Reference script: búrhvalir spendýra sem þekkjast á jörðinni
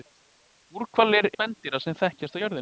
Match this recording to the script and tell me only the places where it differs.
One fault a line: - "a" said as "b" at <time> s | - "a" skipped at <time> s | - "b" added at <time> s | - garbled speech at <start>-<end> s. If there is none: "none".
none